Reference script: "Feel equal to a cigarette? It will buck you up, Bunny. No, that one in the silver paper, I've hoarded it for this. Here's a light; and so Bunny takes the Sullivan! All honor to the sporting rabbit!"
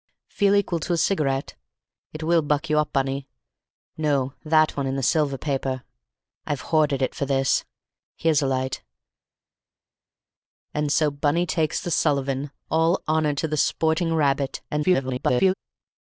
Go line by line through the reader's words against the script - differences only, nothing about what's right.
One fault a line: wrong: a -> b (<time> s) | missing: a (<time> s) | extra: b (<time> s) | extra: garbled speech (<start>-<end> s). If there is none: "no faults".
extra: garbled speech (14.7-15.5 s)